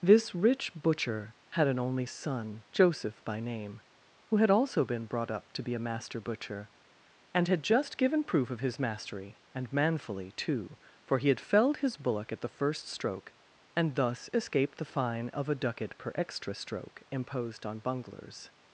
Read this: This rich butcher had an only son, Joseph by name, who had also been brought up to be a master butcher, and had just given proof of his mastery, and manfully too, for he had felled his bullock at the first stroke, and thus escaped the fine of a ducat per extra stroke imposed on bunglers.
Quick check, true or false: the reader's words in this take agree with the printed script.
true